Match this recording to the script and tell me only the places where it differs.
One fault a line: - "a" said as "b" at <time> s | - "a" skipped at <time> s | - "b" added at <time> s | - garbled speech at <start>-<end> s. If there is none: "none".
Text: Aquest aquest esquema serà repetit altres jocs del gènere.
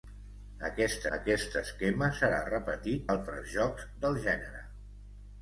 none